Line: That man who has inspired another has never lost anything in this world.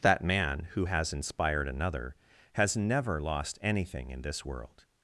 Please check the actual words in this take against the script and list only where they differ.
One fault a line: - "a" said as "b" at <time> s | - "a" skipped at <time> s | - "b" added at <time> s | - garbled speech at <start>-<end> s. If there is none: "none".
none